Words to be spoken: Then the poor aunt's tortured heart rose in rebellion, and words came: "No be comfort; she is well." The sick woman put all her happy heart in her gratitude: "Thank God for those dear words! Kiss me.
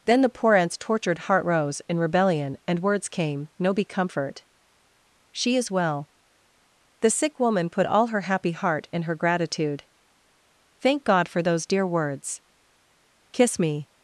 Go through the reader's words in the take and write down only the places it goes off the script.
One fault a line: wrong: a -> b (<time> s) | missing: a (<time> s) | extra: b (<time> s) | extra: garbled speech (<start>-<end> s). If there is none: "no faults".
no faults